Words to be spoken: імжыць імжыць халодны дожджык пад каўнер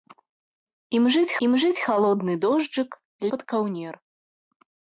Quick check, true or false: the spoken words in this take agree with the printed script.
true